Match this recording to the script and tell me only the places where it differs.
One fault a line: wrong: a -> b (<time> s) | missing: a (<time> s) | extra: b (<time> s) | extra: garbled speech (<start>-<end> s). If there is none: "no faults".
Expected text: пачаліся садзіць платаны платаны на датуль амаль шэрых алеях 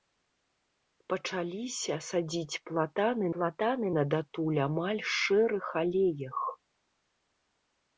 no faults